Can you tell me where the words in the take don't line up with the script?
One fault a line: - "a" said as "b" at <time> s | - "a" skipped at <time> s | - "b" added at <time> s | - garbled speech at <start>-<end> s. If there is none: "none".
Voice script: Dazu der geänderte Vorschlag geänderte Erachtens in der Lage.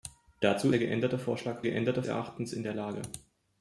none